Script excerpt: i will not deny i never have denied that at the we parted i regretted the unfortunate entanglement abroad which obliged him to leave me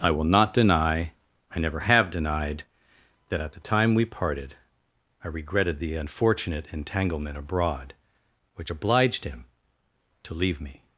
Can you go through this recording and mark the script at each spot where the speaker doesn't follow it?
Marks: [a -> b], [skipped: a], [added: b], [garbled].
i will not deny i never have denied that at the [added: time] we parted i regretted the unfortunate entanglement abroad which obliged him to leave me